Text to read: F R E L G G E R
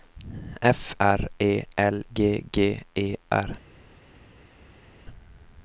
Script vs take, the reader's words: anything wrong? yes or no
no